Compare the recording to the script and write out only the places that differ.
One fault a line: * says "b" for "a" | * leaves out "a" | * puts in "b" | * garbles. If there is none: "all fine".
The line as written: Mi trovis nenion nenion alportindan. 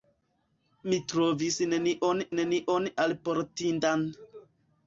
all fine